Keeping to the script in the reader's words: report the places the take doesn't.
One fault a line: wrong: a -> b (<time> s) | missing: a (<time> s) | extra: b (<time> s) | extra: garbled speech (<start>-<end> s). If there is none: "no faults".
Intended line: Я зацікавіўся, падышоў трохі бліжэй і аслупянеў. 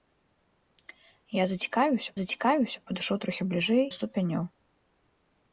extra: зацікавіўся (2.2 s)
missing: і (3.9 s)